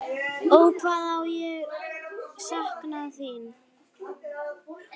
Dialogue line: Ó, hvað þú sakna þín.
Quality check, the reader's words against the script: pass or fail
fail